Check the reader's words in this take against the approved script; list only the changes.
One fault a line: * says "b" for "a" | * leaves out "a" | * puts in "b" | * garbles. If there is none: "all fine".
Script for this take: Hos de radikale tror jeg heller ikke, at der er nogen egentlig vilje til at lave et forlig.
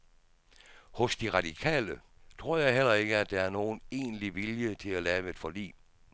all fine